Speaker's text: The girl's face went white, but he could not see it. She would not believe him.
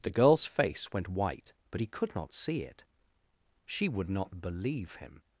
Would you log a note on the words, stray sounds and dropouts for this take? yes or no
no